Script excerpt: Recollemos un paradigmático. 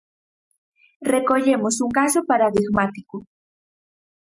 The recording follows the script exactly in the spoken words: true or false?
false